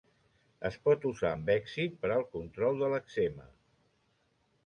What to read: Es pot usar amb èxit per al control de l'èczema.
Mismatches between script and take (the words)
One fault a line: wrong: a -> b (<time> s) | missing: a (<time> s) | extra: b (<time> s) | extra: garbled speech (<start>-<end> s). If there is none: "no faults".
no faults